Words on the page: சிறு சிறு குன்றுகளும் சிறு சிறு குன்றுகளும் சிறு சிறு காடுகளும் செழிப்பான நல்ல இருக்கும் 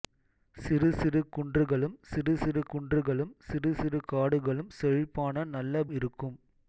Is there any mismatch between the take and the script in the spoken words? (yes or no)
no